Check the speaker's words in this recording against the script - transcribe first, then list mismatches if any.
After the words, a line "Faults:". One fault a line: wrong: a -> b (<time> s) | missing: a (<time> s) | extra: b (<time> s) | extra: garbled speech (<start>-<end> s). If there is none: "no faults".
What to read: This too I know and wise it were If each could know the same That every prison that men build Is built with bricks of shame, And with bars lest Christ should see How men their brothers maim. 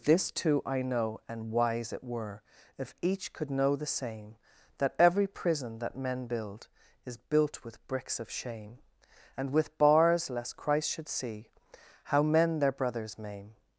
This too I know and wise it were If each could know the same That every prison that men build Is built with bricks of shame, And with bars lest Christ should see How men their brothers maim.
Faults:
no faults